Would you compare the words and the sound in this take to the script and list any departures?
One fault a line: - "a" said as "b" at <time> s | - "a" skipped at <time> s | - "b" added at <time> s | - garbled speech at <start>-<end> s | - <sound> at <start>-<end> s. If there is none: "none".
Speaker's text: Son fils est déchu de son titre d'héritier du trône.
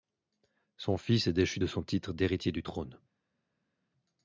none